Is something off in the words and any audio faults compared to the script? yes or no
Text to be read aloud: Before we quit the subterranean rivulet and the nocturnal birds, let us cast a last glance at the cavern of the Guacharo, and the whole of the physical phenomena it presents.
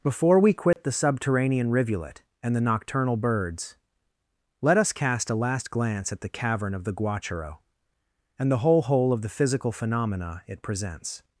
yes